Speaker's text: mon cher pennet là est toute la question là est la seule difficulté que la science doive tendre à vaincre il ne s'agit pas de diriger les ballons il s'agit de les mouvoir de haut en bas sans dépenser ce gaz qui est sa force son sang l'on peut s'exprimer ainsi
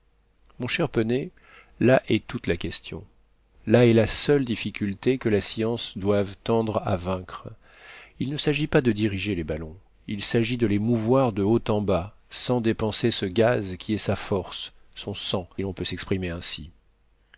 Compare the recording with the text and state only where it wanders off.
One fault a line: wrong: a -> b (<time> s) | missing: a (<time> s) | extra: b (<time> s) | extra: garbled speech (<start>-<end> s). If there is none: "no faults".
no faults